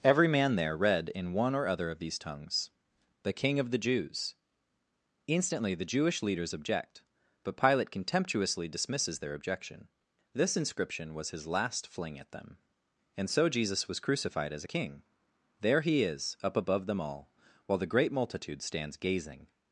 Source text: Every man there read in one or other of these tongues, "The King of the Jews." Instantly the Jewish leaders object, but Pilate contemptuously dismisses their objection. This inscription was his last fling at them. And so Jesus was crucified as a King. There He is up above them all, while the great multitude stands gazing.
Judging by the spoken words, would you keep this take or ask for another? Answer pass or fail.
pass